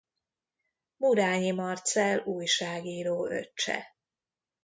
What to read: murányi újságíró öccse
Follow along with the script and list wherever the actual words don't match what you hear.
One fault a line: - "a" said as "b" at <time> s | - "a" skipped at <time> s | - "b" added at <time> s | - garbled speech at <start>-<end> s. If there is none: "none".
- "marcell" added at 1.5 s